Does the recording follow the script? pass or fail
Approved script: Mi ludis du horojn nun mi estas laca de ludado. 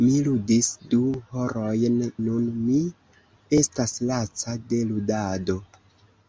pass